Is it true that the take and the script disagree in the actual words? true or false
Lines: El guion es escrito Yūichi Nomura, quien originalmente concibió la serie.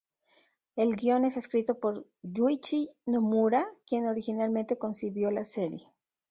true